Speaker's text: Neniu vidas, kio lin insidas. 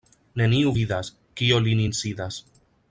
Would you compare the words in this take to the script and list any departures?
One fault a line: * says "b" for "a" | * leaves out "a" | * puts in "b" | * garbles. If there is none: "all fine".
all fine